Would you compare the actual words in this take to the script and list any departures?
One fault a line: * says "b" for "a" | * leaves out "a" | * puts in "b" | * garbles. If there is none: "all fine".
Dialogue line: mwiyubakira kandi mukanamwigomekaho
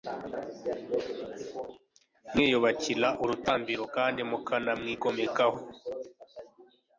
* puts in "urutambiro"